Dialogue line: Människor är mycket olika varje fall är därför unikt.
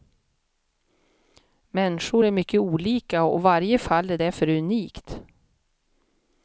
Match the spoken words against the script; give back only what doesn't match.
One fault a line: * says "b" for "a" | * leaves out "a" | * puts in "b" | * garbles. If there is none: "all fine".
* puts in "och"